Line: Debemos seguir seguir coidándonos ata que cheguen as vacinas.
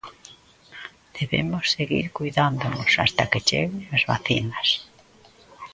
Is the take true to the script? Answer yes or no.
no